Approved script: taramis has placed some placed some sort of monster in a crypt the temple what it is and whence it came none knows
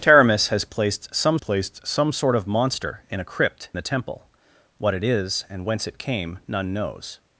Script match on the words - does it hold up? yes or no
yes